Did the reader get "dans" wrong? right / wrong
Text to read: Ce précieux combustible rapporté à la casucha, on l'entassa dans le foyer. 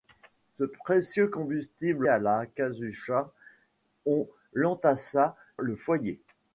wrong